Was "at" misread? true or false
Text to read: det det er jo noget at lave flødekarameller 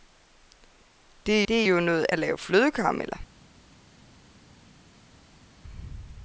false